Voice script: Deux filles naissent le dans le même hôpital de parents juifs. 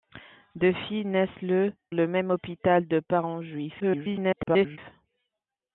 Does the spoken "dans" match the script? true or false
false